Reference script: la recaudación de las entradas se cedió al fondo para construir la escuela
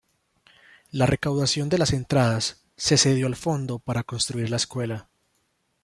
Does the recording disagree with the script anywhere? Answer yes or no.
no